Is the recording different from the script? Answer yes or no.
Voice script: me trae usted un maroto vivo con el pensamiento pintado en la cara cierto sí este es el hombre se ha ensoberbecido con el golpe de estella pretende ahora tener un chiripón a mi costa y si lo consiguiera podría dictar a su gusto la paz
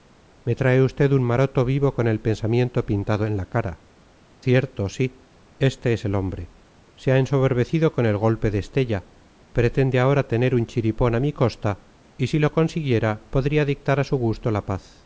no